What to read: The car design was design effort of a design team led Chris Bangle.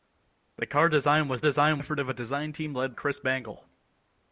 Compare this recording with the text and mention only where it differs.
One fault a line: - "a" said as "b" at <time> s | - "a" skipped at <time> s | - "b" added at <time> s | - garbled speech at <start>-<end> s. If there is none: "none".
none